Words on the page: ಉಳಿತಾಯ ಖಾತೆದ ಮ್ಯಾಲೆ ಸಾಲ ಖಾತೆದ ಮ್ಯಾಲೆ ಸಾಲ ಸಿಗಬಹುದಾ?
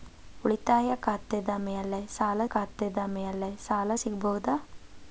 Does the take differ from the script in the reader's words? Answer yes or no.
no